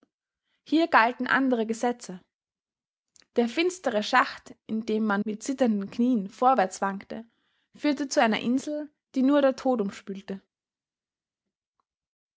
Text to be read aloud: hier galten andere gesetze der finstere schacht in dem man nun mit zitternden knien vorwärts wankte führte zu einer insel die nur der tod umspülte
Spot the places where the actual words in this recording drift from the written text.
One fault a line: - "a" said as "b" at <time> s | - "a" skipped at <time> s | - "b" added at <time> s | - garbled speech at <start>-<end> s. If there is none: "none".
- "nun" skipped at 5.2 s